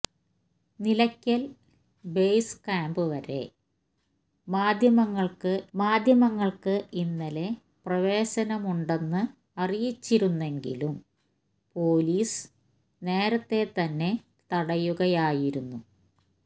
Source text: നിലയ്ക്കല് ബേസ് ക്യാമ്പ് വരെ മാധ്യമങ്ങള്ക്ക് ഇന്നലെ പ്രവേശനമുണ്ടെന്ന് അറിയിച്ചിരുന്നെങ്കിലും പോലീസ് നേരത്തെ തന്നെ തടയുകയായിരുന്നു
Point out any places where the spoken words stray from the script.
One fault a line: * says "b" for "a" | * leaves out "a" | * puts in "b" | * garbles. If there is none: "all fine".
* puts in "മാധ്യമങ്ങള്ക്ക്"